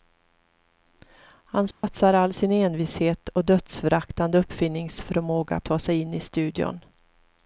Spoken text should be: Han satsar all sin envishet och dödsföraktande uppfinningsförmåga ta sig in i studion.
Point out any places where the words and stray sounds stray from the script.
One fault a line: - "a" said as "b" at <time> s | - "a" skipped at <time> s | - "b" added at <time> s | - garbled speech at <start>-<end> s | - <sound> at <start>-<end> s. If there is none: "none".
- dropout at 1.7-1.8 s